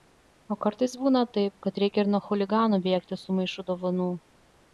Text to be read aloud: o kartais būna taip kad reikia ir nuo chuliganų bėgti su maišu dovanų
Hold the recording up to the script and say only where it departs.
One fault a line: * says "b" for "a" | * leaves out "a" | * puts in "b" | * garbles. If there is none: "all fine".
all fine